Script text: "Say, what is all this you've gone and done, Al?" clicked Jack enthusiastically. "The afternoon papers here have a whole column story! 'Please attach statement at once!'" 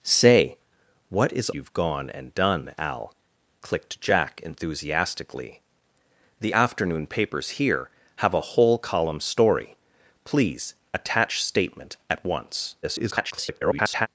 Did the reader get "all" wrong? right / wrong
wrong